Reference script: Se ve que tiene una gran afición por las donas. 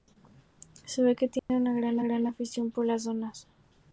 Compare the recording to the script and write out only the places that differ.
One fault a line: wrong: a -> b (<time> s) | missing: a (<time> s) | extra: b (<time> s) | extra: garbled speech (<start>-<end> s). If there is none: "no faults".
extra: gran (2.0 s)